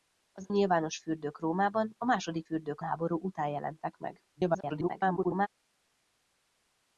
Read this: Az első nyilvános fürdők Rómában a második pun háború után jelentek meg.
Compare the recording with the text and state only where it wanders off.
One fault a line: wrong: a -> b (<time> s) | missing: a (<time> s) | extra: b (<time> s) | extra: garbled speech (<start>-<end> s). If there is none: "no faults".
missing: első (0.5 s)
wrong: pun -> fürdők (2.4 s)
extra: garbled speech (4.3-5.5 s)